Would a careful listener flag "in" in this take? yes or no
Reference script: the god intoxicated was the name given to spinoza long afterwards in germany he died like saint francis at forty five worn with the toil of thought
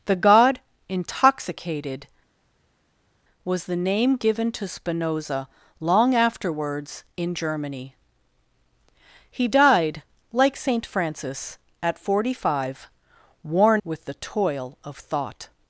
no